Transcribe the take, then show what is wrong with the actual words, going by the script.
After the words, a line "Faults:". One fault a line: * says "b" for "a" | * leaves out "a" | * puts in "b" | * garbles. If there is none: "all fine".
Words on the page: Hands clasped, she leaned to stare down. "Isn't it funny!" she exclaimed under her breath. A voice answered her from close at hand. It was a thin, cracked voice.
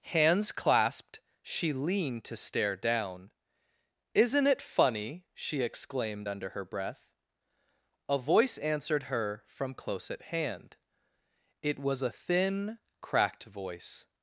Hands clasped, she leaned to stare down. "Isn't it funny!" she exclaimed under her breath. A voice answered her from close at hand. It was a thin, cracked voice.
Faults:
all fine